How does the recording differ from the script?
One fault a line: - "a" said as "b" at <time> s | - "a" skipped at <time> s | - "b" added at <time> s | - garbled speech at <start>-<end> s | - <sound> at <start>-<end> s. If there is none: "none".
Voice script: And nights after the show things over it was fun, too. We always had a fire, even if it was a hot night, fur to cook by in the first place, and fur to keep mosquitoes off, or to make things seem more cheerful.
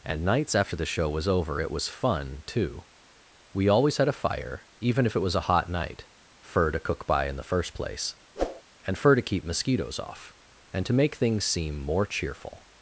- "things" said as "was" at 1.1 s
- whoosh at 8.4-8.6 s
- "or" said as "and" at 10.7 s